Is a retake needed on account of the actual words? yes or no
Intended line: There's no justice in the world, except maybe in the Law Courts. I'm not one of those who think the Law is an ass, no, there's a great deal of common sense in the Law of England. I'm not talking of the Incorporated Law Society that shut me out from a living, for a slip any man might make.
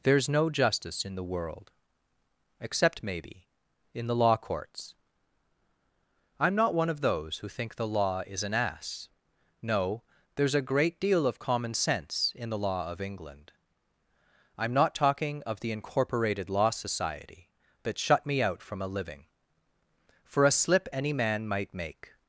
no